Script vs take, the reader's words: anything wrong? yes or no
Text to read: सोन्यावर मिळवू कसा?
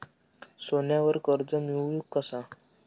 yes